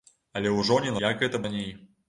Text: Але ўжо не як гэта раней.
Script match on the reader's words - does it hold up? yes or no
yes